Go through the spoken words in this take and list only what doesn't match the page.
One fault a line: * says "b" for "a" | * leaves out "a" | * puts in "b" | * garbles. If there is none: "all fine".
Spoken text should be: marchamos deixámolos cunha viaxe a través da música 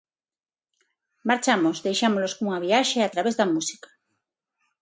all fine